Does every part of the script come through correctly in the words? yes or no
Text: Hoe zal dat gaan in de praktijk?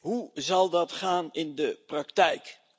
yes